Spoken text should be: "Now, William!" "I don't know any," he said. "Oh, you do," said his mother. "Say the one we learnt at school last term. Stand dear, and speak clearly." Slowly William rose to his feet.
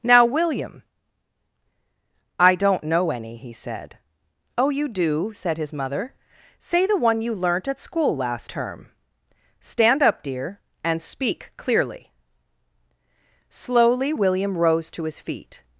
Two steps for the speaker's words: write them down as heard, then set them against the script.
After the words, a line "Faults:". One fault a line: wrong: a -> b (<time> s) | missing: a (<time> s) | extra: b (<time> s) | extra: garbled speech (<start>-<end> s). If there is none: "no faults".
"Now, William!" "I don't know any," he said. "Oh, you do," said his mother. "Say the one you learnt at school last term. Stand up, dear, and speak clearly." Slowly William rose to his feet.
Faults:
wrong: we -> you (7.2 s)
extra: up (10.0 s)